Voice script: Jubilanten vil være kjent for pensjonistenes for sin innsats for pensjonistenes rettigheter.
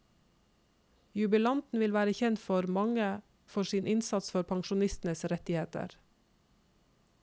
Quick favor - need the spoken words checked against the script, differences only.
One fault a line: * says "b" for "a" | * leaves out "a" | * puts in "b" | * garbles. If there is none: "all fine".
* says "mange" for "pensjonistenes"